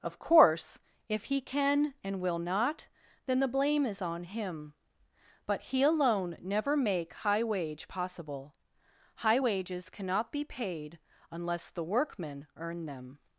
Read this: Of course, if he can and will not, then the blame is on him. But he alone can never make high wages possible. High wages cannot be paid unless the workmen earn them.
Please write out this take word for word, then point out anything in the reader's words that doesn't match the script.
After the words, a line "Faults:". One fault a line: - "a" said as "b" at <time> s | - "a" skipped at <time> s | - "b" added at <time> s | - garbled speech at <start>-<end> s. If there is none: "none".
Of course, if he can and will not, then the blame is on him. But he alone never make high wage possible. High wages cannot be paid unless the workmen earn them.
Faults:
- "can" skipped at 6.4 s
- "wages" said as "wage" at 7.4 s